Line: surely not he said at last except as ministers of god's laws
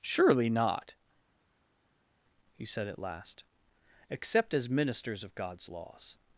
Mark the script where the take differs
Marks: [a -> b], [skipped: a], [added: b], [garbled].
surely not he said at last except as ministers of god's laws